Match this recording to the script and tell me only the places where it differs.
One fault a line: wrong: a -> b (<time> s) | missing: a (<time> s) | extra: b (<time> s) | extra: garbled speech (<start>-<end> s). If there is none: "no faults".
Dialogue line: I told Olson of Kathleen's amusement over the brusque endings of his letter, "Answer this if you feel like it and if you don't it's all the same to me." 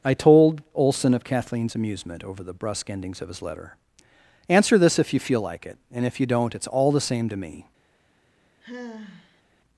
no faults